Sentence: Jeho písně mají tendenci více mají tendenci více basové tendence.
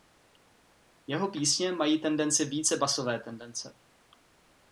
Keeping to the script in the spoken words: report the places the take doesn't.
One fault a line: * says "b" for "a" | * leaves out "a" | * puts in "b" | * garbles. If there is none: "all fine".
* leaves out "mají tendenci více"